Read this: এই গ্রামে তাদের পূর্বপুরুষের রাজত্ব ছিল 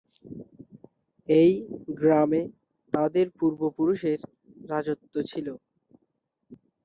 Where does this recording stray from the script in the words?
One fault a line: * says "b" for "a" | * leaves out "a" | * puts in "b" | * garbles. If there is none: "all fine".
all fine